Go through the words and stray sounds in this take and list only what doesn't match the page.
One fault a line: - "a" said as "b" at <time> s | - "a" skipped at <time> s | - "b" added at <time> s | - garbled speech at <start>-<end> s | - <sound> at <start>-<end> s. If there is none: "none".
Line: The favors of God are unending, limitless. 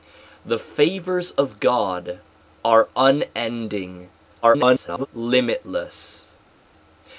- garbled speech at 4.4-5.1 s